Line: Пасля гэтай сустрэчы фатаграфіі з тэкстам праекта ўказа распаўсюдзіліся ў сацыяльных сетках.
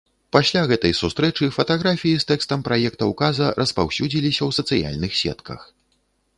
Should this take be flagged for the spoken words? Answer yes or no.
no